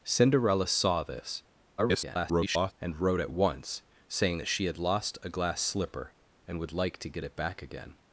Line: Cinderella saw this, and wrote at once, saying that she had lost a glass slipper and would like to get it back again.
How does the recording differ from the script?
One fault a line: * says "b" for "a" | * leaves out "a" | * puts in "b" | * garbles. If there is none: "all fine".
* garbles